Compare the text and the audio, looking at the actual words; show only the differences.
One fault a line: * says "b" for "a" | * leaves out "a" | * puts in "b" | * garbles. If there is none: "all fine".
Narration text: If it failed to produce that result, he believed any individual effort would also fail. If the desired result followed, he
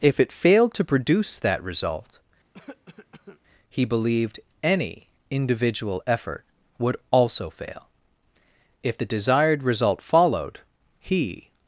all fine